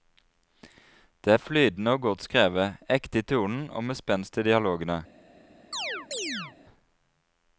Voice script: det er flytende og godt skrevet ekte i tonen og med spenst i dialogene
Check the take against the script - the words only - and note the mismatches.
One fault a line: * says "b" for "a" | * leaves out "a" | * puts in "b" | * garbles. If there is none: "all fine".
all fine